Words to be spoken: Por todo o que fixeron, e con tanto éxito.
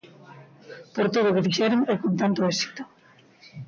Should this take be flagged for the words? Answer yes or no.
no